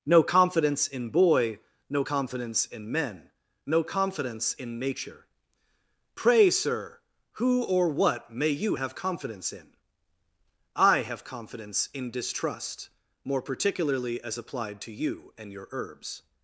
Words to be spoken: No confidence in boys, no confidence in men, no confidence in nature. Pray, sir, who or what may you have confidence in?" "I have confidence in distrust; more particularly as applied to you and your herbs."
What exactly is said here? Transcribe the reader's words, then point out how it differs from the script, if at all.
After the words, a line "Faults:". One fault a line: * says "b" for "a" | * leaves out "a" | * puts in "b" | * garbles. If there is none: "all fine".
No confidence in boy, no confidence in men, no confidence in nature. Pray, sir, who or what may you have confidence in?" "I have confidence in distrust; more particularly as applied to you and your herbs."
Faults:
* says "boy" for "boys"